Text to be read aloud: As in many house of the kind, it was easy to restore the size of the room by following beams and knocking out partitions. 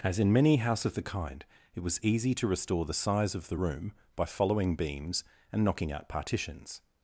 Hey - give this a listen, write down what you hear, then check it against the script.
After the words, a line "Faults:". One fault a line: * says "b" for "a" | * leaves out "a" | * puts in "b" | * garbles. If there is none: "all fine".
As in many house of the kind, it was easy to restore the size of the room by following beams and knocking out partitions.
Faults:
all fine